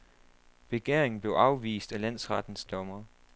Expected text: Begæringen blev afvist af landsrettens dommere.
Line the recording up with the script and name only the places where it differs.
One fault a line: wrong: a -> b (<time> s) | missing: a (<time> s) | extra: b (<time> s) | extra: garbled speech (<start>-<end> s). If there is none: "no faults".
no faults